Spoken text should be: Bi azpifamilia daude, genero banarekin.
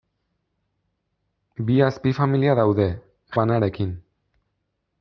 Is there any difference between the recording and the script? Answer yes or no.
yes